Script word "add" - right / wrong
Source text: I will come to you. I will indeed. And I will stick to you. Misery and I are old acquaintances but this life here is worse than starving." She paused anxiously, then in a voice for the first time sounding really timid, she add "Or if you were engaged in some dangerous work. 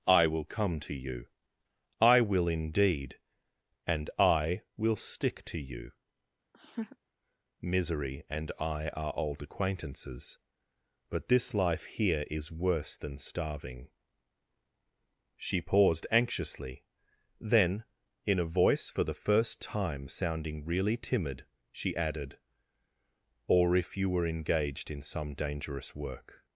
wrong